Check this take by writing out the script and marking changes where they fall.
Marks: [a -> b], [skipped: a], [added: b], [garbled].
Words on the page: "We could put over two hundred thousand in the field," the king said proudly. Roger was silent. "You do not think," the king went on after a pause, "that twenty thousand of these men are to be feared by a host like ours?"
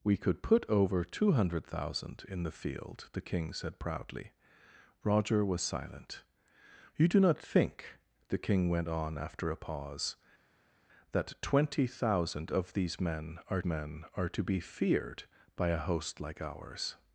"We could put over two hundred thousand in the field," the king said proudly. Roger was silent. "You do not think," the king went on after a pause, "that twenty thousand of these men are [added: men are] to be feared by a host like ours?"